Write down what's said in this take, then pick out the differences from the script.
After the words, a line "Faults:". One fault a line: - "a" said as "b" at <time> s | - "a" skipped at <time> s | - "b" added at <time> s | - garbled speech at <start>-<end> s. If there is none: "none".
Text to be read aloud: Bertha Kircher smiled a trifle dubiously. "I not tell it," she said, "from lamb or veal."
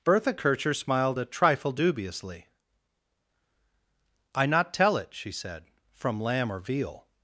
Bertha Kircher smiled a trifle dubiously. "I not tell it," she said, "from lamb or veal."
Faults:
none